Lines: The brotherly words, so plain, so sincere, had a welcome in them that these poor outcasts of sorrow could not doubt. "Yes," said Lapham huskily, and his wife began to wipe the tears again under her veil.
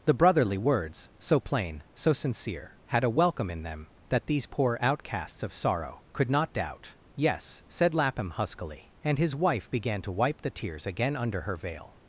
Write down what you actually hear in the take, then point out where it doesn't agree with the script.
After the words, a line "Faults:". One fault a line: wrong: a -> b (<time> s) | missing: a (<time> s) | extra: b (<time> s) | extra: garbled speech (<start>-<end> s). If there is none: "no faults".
The brotherly words, so plain, so sincere, had a welcome in them that these poor outcasts of sorrow could not doubt. "Yes," said Lapham huskily, and his wife began to wipe the tears again under her veil.
Faults:
no faults